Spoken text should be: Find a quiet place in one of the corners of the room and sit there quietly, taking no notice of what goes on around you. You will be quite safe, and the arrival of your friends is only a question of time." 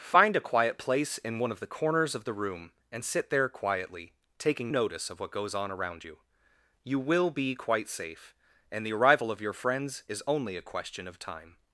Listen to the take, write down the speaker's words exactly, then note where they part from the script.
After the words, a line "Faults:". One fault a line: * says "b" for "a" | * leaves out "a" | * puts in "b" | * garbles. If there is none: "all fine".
Find a quiet place in one of the corners of the room and sit there quietly, taking notice of what goes on around you. You will be quite safe, and the arrival of your friends is only a question of time."
Faults:
* leaves out "no"